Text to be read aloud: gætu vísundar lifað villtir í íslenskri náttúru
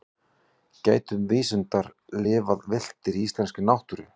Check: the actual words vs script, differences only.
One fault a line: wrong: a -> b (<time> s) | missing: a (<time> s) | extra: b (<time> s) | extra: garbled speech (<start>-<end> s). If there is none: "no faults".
no faults